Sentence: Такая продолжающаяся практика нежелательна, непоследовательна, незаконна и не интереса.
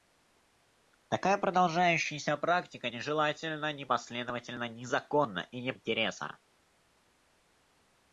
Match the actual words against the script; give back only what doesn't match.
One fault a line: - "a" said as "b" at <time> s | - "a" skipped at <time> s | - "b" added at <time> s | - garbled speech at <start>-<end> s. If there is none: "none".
none